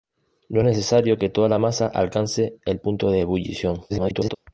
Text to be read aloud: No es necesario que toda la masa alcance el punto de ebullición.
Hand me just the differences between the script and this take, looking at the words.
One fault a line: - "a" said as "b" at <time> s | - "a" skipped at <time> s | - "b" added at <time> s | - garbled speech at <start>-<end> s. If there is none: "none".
- garbled speech at 3.9-4.4 s